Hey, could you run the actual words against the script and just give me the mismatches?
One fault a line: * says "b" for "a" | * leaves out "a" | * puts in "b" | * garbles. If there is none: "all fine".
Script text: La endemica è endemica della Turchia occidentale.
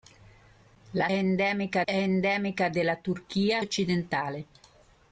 all fine